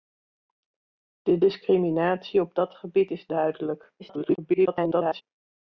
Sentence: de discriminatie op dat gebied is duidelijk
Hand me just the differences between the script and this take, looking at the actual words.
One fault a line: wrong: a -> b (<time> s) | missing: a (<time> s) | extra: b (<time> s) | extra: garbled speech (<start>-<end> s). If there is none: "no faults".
extra: garbled speech (4.0-5.2 s)